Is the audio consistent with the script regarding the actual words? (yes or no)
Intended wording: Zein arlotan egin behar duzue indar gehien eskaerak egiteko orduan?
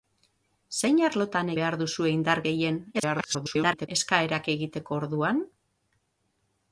no